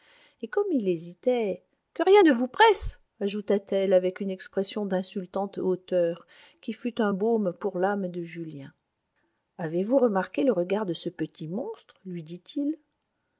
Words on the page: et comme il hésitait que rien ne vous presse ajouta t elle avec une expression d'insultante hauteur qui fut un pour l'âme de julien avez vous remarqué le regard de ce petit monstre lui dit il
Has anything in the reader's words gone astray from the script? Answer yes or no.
yes